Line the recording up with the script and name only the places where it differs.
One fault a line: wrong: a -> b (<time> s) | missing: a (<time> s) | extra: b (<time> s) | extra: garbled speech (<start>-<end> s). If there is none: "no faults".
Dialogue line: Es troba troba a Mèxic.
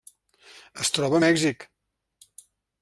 missing: troba (1.2 s)